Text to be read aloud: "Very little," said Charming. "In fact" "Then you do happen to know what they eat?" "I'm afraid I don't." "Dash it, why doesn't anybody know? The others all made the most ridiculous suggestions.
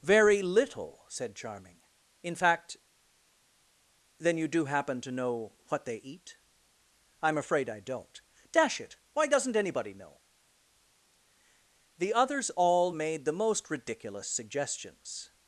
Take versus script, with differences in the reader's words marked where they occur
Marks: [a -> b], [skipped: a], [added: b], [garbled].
"Very little," said Charming. "In fact" "Then you do happen to know what they eat?" "I'm afraid I don't." "Dash it, why doesn't anybody know? The others all made the most ridiculous suggestions.